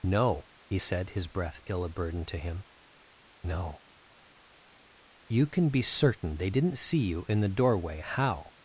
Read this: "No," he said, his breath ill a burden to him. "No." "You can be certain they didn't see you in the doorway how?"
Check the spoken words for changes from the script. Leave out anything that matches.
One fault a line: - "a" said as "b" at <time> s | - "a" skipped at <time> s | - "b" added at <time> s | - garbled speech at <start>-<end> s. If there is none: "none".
none